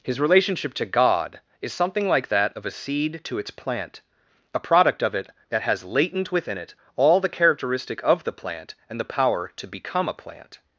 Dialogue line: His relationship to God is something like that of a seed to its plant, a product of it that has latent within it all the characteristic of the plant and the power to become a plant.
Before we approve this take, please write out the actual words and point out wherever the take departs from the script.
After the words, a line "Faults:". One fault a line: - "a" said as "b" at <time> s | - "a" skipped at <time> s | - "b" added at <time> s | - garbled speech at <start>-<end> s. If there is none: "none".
His relationship to God is something like that of a seed to its plant, a product of it that has latent within it all the characteristic of the plant and the power to become a plant.
Faults:
none